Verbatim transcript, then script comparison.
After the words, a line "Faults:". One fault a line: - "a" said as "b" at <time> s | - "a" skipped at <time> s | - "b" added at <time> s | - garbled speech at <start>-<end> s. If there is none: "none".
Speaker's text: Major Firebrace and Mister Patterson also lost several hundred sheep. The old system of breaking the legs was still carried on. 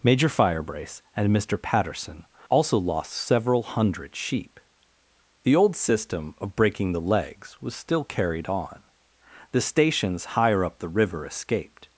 Major Firebrace and Mister Patterson also lost several hundred sheep. The old system of breaking the legs was still carried on. The stations higher up the river escaped
Faults:
- "The stations higher up the river escaped" added at 9.5 s